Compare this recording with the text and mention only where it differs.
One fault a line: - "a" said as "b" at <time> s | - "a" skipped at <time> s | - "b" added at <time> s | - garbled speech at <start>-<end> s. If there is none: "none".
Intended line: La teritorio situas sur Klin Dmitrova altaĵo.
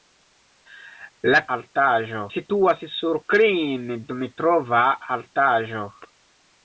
- "teritorio" said as "altaĵo" at 1.6 s